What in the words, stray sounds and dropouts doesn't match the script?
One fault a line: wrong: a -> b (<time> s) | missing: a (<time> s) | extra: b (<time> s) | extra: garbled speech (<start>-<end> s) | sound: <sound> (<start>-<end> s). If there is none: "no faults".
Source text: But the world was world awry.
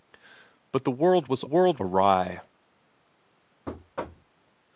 sound: thud (3.7-4.3 s)